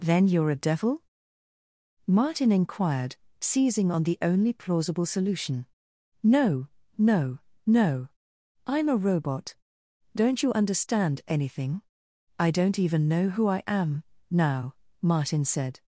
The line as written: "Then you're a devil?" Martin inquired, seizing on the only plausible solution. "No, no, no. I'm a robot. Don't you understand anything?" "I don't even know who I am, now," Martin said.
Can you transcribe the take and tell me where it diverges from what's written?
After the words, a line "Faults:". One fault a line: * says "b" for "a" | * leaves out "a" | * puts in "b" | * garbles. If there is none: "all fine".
"Then you're a devil?" Martin inquired, seizing on the only plausible solution. "No, no, no. I'm a robot. Don't you understand anything?" "I don't even know who I am, now," Martin said.
Faults:
all fine